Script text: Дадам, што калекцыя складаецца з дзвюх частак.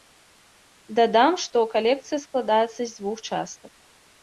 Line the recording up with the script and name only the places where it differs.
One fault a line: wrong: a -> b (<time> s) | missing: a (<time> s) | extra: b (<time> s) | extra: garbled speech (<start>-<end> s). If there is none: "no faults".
no faults